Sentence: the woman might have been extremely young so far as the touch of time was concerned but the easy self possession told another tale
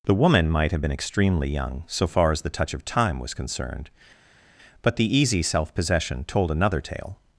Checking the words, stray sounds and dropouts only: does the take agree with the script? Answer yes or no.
yes